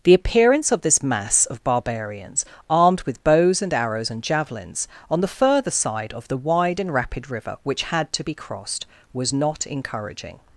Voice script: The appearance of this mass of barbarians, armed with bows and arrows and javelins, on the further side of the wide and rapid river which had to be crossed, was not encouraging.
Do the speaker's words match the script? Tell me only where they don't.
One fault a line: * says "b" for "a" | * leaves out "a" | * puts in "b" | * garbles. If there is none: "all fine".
all fine